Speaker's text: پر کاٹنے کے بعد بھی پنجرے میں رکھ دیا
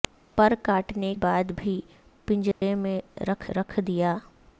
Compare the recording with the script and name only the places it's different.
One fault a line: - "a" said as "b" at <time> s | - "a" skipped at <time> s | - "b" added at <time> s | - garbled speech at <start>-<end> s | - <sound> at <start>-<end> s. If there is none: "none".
- "کے" skipped at 1.1 s
- dropout at 2.5-2.6 s
- "رکھ" added at 3.6 s